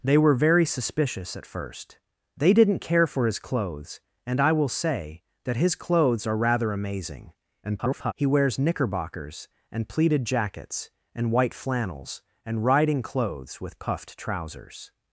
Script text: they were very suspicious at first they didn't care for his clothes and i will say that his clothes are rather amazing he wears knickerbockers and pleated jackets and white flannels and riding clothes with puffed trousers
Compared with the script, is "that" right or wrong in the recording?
right